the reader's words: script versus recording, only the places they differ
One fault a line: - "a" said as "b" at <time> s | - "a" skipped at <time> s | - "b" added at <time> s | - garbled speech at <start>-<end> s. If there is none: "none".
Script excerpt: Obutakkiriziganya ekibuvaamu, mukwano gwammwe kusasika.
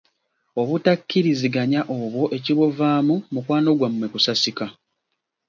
- "obwo" added at 2.0 s